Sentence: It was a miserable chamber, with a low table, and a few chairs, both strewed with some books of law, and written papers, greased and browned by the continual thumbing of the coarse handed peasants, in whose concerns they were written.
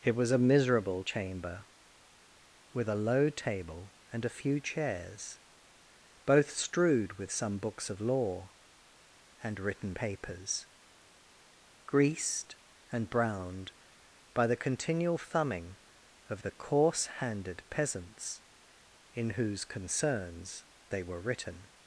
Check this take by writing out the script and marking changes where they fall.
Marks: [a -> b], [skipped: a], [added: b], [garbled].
It was a miserable chamber, with a low table, and a few chairs, both strewed with some books of law, and written papers, greased and browned by the continual thumbing of the coarse handed peasants, in whose concerns they were written.